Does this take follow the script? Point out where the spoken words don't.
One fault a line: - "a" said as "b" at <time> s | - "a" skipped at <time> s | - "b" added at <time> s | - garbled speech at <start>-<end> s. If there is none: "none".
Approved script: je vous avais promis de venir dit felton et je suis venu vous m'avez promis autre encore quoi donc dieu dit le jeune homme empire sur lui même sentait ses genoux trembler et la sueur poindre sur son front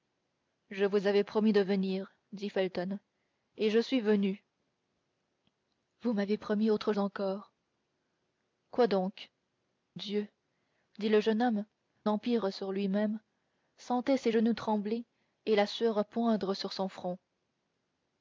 none